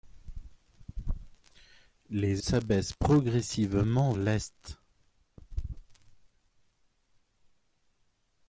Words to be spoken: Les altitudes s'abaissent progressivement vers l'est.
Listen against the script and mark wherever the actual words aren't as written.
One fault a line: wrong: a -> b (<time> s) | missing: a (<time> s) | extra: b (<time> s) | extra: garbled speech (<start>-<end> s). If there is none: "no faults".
missing: altitudes (2.4 s)
missing: vers (4.1 s)